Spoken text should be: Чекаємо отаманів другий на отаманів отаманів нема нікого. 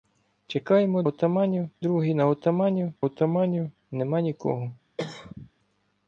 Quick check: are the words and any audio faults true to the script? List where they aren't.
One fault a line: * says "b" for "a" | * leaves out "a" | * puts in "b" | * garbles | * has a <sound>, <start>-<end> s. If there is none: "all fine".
* has a cough, 5.0-5.5 s